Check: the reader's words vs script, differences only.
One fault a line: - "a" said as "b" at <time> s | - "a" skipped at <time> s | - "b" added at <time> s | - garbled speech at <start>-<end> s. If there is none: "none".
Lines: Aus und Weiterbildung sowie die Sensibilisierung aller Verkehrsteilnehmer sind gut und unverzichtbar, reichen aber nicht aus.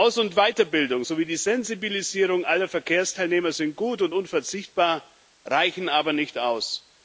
none